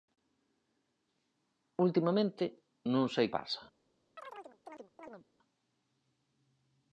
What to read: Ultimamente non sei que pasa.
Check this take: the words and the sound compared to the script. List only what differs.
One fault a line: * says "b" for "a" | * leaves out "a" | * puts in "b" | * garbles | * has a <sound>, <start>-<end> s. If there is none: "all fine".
* leaves out "que"
* has a chirp, 4.2-5.3 s